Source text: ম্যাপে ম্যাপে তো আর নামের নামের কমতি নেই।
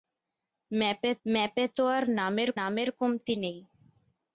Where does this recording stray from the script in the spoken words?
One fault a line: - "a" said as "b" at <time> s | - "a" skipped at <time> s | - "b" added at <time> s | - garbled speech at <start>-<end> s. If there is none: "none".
none